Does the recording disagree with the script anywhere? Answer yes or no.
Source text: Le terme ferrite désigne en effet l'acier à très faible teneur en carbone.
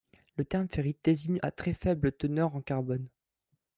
yes